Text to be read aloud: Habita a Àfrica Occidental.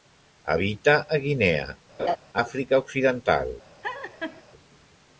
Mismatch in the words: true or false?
true